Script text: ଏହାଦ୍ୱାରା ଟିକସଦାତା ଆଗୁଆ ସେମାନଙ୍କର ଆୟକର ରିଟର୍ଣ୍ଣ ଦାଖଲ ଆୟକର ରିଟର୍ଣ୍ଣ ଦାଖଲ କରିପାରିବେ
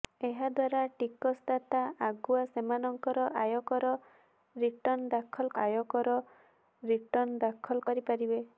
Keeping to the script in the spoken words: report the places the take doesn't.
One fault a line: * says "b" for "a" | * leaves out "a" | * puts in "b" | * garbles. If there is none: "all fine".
all fine